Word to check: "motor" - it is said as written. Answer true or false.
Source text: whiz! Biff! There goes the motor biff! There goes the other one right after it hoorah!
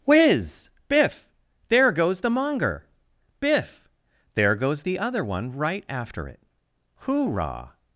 false